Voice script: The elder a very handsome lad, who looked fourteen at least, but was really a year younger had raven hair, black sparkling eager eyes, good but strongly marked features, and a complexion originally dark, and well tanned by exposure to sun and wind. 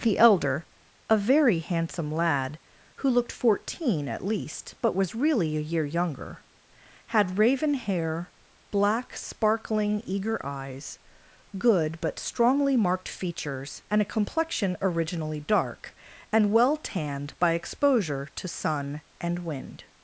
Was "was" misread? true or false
false